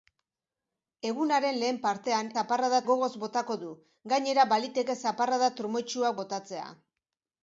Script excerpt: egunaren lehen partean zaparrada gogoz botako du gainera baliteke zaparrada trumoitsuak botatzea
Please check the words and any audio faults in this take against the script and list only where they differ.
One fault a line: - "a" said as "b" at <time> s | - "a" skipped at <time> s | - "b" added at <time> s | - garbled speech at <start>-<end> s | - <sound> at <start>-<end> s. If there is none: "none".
none